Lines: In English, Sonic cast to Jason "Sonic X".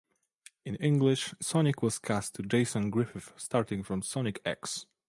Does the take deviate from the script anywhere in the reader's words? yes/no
yes